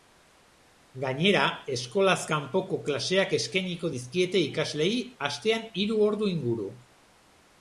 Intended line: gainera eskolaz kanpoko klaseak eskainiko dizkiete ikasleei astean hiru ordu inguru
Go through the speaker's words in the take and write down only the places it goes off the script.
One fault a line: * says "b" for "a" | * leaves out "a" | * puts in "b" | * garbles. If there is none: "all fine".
all fine